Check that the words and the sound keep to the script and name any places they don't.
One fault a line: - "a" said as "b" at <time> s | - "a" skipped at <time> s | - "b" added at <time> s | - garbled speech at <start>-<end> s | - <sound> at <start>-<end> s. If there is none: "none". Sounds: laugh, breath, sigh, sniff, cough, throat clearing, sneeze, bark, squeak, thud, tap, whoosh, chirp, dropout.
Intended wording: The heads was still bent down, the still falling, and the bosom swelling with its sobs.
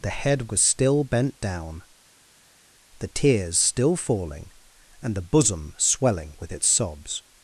- "heads" said as "head" at 0.1 s
- "tears" added at 3.1 s